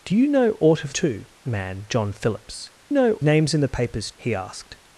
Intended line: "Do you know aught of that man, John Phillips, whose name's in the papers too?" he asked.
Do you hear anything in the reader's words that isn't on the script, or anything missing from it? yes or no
yes